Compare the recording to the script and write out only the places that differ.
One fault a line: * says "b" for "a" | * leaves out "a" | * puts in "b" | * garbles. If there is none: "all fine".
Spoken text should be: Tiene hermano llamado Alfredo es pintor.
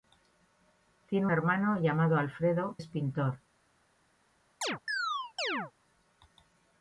all fine